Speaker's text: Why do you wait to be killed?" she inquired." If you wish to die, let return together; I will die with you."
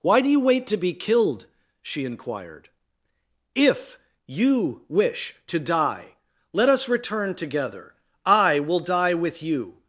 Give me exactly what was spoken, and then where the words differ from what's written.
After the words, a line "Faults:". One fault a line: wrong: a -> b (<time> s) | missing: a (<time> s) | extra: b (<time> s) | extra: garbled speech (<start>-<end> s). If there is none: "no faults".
Why do you wait to be killed?" she inquired." If you wish to die, let us return together; I will die with you."
Faults:
extra: us (6.7 s)